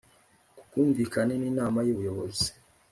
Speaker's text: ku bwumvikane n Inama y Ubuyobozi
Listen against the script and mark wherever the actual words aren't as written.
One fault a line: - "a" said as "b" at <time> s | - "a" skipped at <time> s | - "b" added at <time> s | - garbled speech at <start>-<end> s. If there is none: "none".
none